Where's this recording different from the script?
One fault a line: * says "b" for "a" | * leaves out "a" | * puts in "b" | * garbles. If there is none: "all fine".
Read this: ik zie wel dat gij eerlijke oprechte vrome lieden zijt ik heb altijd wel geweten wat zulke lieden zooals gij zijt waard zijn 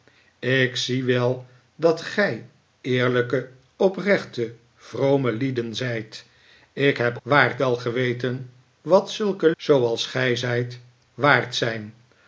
* says "waard" for "altijd"
* leaves out "lieden"